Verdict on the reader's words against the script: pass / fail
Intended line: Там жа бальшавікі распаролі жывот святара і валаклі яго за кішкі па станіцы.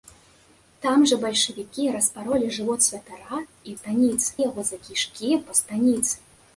fail